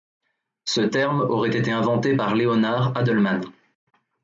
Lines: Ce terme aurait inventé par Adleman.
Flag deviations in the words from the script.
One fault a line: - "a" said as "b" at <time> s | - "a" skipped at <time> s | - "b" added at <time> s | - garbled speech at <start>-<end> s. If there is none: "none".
- "été" added at 1.6 s
- "Leonard" added at 2.3 s